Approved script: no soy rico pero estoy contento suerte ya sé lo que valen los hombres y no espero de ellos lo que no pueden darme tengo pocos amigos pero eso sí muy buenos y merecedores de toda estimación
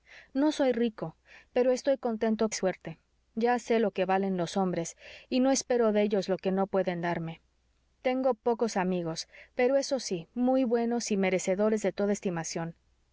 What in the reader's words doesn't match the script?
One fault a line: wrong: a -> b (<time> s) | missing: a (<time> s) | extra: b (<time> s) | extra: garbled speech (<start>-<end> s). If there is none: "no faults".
no faults